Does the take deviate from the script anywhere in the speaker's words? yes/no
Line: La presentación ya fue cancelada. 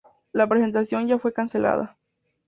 no